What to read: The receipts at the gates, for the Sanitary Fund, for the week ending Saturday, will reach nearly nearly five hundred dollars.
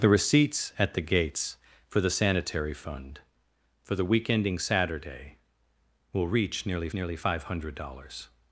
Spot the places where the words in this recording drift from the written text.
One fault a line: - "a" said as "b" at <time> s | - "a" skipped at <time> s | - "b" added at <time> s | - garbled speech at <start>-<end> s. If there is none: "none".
none